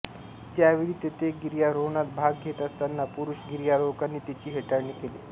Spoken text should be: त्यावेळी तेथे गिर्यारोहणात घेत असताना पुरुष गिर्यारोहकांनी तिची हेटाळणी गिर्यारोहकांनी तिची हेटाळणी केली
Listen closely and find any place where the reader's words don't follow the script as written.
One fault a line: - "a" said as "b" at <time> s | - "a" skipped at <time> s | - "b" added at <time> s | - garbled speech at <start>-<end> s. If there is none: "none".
- "भाग" added at 2.1 s
- "गिर्यारोहकांनी तिची हेटाळणी" skipped at 4.9 s